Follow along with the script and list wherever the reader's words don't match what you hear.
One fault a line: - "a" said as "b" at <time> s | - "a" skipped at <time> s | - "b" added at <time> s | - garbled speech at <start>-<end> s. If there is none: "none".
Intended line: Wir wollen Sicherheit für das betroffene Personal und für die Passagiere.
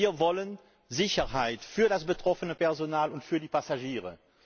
none